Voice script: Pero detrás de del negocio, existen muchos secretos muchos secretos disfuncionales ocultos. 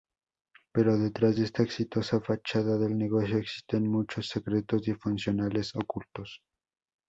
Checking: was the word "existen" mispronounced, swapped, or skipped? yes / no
no